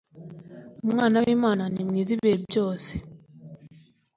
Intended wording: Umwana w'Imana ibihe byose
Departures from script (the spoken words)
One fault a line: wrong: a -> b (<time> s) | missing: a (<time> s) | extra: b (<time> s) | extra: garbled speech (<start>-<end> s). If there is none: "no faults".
extra: ni mwiza (1.7 s)